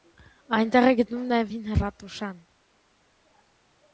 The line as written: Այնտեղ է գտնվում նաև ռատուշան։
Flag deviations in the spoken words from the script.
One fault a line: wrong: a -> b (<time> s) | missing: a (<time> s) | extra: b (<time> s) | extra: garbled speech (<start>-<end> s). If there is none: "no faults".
extra: հին (1.5 s)